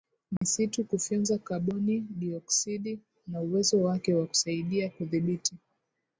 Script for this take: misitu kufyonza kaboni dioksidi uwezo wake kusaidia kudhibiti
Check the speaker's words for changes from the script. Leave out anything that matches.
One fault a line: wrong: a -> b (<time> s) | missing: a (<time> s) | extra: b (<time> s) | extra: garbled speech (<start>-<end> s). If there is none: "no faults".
extra: na (3.3 s)
extra: wa (4.1 s)